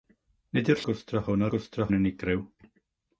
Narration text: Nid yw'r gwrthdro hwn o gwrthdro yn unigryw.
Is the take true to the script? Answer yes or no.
yes